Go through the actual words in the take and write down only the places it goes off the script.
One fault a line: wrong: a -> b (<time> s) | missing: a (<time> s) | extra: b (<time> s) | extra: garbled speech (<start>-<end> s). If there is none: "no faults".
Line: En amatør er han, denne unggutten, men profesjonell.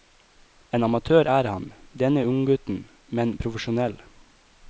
no faults